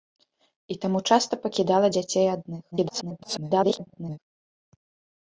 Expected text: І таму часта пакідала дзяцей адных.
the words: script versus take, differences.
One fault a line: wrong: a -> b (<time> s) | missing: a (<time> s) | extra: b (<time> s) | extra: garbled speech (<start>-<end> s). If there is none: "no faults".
extra: garbled speech (2.7-4.2 s)